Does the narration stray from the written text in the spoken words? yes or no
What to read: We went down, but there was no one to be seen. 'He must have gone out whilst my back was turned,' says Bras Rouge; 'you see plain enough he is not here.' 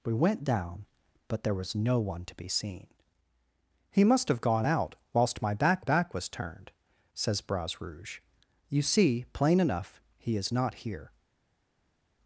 yes